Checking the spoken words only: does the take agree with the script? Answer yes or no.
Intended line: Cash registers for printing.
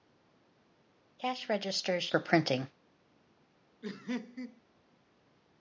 yes